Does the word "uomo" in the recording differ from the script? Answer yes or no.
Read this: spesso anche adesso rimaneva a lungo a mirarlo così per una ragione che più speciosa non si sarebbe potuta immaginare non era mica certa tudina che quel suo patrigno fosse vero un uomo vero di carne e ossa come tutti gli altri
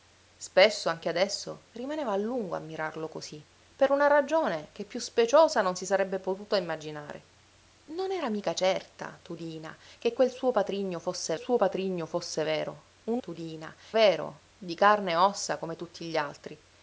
yes